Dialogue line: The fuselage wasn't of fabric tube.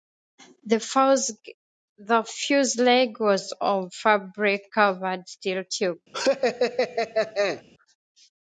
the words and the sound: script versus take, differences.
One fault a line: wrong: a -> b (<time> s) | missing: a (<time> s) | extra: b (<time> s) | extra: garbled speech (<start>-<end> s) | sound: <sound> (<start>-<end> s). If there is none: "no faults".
wrong: wasn't -> was (3.2 s)
extra: covered steel (4.7 s)
sound: laugh (6.1-7.6 s)